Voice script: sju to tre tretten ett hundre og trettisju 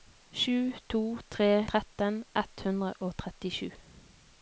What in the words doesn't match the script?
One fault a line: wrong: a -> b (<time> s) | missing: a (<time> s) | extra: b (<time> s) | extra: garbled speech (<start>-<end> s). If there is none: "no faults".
no faults